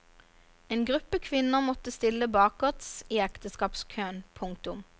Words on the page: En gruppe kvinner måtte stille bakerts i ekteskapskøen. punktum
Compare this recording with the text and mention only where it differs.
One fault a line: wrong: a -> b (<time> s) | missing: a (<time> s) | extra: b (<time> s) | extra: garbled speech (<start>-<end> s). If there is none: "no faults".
no faults